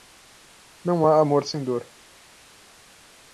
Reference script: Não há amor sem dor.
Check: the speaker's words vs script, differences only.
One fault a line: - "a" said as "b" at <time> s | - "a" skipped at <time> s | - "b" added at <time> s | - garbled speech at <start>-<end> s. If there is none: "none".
none